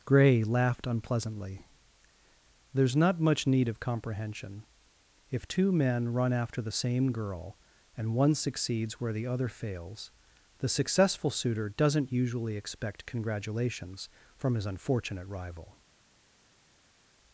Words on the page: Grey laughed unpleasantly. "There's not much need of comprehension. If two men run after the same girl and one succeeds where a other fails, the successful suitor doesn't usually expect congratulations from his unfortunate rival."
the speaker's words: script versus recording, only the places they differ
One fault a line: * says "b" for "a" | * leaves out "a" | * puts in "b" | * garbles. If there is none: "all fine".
* says "the" for "a"